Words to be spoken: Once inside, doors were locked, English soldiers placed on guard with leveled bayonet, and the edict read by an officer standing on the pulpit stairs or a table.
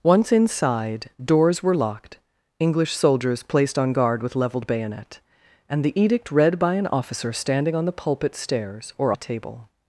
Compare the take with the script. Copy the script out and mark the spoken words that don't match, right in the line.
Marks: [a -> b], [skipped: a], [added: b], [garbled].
Once inside, doors were locked, English soldiers placed on guard with leveled bayonet, and the edict read by an officer standing on the pulpit stairs or a table.